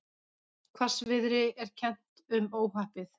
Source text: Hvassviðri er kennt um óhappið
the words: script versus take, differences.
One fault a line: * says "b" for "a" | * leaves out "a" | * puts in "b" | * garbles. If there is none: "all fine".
all fine